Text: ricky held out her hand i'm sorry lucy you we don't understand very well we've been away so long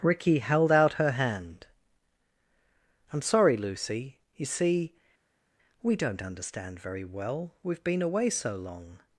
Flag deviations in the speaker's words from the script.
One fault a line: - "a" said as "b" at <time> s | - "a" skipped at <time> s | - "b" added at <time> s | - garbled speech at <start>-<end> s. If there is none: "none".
- "see" added at 4.5 s